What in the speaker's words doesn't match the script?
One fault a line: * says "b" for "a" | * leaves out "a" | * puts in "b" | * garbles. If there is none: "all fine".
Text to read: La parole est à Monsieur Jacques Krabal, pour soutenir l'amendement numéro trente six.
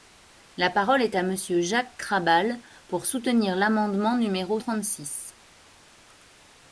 all fine